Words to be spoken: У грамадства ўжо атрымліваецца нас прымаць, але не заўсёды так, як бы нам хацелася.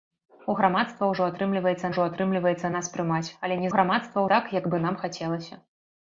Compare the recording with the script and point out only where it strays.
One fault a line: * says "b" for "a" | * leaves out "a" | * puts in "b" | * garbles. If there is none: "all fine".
* puts in "ўжо атрымліваецца"
* says "грамадства" for "заўсёды"